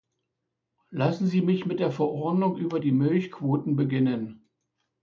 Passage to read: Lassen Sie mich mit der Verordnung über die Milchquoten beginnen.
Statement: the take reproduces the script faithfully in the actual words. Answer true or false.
true